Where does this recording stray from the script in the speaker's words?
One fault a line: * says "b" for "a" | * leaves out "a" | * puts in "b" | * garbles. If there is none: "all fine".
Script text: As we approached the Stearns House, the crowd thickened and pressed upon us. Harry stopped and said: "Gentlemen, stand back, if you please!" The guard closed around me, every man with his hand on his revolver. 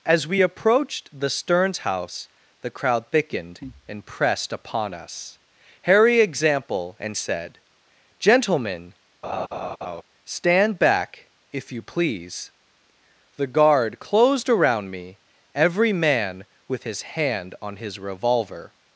* says "example" for "stopped"